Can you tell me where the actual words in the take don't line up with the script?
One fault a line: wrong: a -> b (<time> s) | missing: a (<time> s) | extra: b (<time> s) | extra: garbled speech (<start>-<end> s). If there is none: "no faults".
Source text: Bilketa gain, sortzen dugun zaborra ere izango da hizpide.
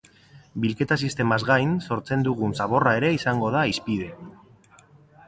extra: sistemaz (1.1 s)